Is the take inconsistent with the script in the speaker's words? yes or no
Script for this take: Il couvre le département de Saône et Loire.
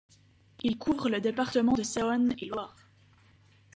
no